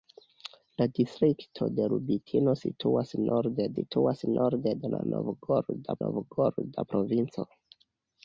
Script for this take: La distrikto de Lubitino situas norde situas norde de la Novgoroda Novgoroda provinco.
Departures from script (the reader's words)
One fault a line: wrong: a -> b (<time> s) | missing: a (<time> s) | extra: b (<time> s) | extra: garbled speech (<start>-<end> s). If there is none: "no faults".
no faults